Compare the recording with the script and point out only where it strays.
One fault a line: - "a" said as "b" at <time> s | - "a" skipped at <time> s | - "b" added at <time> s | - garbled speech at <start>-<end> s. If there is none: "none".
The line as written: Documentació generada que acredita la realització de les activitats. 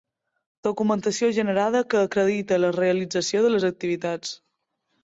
none